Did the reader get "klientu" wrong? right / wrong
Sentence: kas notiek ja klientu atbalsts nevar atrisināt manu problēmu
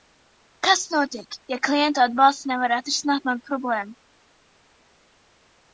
right